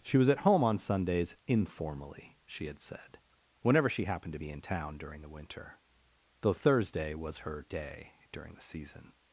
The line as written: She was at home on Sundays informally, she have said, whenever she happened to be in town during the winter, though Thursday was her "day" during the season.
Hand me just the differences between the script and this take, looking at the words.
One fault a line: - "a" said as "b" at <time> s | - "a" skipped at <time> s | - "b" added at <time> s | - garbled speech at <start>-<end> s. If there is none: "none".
- "have" said as "had" at 2.6 s